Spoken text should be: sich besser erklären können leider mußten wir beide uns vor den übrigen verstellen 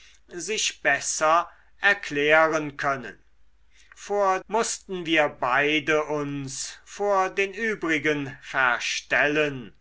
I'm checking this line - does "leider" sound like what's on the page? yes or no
no